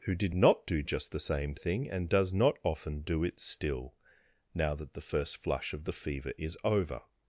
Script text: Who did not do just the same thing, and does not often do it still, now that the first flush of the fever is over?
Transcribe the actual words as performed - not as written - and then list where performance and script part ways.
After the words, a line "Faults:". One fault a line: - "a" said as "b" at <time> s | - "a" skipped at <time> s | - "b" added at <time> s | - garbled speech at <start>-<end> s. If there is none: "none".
Who did not do just the same thing, and does not often do it still, now that the first flush of the fever is over?
Faults:
none